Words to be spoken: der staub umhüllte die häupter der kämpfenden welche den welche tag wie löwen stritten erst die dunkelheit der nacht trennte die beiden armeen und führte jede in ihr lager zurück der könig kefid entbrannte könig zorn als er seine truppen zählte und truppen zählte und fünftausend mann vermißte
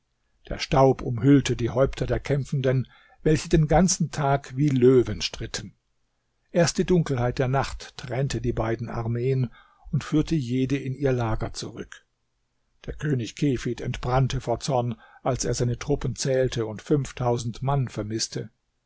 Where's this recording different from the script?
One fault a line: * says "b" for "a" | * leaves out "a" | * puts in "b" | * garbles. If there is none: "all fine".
* says "ganzen" for "welche"
* says "vor" for "könig"
* leaves out "truppen zählte und"